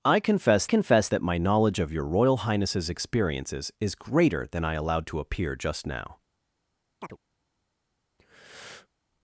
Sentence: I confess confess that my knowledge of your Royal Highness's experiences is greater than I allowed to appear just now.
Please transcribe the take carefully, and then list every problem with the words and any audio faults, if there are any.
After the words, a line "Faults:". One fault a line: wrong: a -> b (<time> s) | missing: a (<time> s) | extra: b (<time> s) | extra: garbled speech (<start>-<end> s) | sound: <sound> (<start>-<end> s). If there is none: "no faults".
I confess confess that my knowledge of your Royal Highness's experiences is greater than I allowed to appear just now.
Faults:
sound: chirp (7.0-7.2 s)
sound: breath (8.2-8.9 s)